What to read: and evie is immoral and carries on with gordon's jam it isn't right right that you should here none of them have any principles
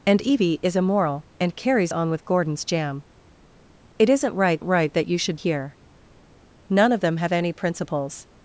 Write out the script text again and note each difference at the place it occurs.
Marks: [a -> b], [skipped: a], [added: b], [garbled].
and evie is immoral and carries on with gordon's jam it isn't right right that you should here none of them have any principles